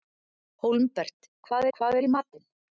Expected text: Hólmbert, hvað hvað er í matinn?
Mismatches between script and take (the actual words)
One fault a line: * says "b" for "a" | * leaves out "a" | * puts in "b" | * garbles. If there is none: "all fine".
all fine